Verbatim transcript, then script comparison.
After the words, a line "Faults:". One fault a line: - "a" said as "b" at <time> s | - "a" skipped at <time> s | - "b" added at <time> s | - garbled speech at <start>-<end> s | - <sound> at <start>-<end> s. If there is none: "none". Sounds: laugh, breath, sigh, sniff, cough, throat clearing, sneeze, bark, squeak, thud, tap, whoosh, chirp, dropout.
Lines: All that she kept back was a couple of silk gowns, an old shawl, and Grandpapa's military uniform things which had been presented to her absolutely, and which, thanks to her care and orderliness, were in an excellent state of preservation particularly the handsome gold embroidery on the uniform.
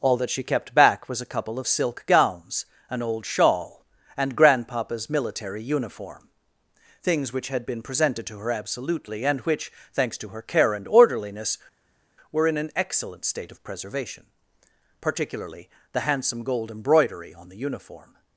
All that she kept back was a couple of silk gowns, an old shawl, and Grandpapa's military uniform things which had been presented to her absolutely, and which, thanks to her care and orderliness, were in an excellent state of preservation particularly the handsome gold embroidery on the uniform.
Faults:
none